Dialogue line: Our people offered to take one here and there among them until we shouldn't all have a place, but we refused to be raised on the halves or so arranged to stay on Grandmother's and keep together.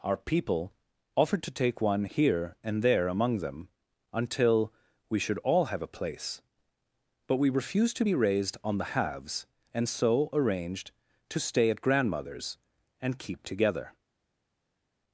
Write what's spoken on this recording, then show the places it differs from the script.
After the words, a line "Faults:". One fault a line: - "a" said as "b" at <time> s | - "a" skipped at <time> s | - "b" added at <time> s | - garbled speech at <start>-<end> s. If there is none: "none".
Our people offered to take one here and there among them until we should all have a place, but we refused to be raised on the halves and so arranged to stay at Grandmother's and keep together.
Faults:
- "shouldn't" said as "should" at 5.2 s
- "or" said as "and" at 9.7 s
- "on" said as "at" at 11.7 s